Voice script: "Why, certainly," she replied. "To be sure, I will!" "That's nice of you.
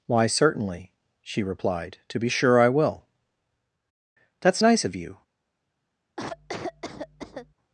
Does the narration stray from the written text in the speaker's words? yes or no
no